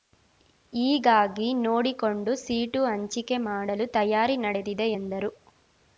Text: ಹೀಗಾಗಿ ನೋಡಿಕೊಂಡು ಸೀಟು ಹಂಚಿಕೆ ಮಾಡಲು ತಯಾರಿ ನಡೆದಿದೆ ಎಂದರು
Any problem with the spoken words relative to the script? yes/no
no